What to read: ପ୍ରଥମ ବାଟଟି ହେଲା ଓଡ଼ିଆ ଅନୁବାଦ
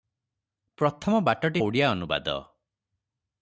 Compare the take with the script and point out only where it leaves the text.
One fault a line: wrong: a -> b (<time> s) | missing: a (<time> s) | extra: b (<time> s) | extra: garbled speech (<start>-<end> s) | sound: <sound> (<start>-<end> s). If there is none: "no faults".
missing: ହେଲା (1.6 s)